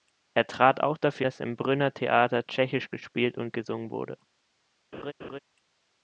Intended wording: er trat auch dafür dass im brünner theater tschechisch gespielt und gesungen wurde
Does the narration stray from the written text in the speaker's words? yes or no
no